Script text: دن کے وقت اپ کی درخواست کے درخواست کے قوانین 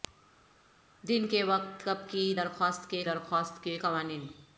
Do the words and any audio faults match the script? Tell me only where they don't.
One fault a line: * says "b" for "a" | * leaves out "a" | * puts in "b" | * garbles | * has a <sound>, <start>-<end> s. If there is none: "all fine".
all fine